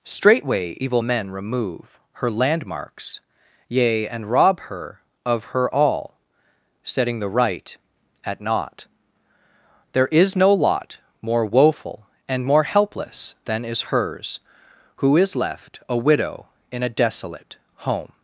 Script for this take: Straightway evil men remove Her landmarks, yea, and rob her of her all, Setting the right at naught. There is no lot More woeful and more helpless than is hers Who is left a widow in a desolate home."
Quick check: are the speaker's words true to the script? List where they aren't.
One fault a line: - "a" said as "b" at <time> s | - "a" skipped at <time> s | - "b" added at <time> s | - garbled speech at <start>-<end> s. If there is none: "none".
none